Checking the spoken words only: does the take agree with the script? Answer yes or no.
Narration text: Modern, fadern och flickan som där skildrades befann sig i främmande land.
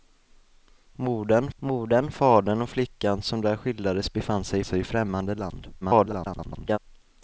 no